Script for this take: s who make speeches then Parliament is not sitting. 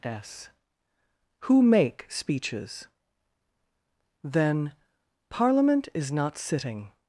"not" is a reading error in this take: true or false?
false